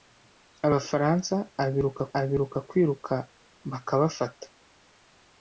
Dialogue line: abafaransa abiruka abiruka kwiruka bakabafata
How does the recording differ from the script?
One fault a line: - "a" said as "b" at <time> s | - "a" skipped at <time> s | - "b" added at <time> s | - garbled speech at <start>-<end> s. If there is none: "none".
none